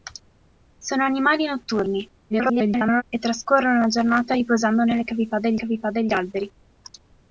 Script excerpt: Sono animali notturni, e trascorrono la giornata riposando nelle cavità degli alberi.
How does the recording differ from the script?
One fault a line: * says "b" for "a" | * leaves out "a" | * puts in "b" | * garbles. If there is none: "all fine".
* garbles
* puts in "cavità degli"